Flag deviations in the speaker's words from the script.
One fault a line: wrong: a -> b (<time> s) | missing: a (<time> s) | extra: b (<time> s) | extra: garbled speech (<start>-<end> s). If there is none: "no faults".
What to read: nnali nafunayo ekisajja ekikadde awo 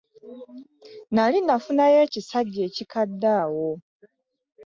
no faults